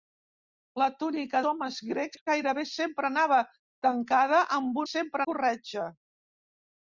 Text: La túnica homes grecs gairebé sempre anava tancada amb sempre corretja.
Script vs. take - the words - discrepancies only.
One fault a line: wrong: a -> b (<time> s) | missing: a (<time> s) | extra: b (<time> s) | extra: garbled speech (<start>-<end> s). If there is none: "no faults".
no faults